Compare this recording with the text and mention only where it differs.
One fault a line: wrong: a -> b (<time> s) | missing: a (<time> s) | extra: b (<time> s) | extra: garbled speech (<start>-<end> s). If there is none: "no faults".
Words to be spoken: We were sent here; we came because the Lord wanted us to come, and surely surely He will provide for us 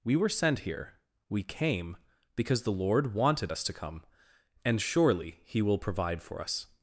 missing: surely (5.4 s)